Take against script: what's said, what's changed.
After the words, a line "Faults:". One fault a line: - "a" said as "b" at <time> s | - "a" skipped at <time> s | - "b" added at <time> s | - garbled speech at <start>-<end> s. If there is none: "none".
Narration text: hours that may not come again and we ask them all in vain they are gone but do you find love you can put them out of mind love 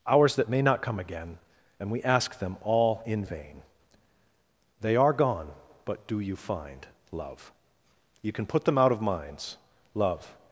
hours that may not come again and we ask them all in vain they are gone but do you find love you can put them out of minds love
Faults:
- "mind" said as "minds" at 9.0 s